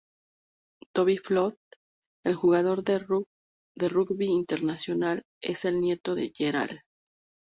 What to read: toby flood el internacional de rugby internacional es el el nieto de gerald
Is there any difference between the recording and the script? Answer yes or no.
yes